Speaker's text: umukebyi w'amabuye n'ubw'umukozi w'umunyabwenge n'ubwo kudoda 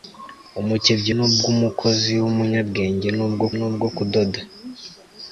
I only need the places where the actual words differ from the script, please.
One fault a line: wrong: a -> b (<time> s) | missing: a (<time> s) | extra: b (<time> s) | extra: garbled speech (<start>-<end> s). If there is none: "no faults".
missing: w'amabuye (1.1 s)
extra: n'ubwo (3.6 s)